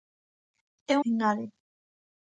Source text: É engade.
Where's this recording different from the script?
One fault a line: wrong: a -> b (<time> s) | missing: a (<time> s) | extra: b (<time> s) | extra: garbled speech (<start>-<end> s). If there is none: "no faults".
no faults